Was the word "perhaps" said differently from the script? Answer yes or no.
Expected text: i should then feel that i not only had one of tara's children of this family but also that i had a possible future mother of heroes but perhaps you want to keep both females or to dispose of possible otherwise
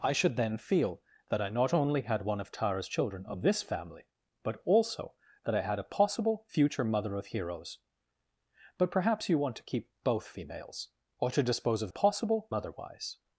no